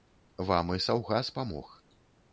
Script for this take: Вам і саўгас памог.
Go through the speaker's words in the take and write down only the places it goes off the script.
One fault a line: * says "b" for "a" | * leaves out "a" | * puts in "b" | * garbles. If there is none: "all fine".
all fine